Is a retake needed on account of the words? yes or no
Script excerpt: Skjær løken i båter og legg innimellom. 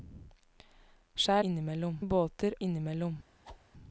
yes